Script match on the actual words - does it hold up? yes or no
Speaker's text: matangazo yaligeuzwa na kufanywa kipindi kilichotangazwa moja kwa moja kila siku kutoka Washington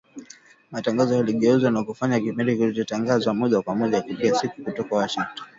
yes